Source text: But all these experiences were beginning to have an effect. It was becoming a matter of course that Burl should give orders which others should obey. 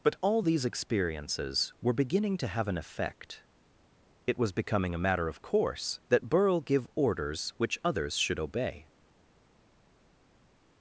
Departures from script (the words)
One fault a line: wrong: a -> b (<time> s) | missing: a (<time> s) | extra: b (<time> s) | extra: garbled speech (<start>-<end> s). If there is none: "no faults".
missing: should (6.6 s)